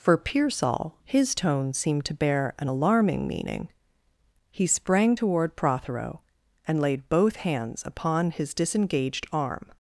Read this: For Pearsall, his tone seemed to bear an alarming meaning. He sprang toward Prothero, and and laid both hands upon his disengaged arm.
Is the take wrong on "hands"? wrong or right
right